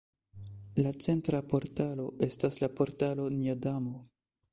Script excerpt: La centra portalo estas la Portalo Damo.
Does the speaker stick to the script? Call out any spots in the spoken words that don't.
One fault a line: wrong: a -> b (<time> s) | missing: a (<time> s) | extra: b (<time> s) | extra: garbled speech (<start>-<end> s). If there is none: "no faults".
extra: Nia (3.4 s)